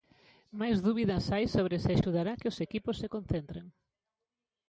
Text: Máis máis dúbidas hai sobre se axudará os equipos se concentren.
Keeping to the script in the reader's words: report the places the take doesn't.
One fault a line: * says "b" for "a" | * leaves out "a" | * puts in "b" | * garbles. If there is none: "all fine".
* leaves out "máis"
* puts in "que"